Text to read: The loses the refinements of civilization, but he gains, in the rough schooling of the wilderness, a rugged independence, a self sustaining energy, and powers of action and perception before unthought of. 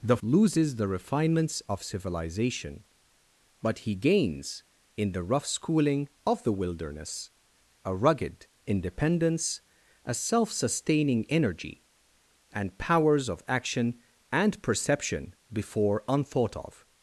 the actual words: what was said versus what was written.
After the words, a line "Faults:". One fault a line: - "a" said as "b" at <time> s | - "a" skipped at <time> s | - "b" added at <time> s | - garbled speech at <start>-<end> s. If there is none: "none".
The loses the refinements of civilization, but he gains, in the rough schooling of the wilderness, a rugged independence, a self sustaining energy, and powers of action and perception before unthought of.
Faults:
none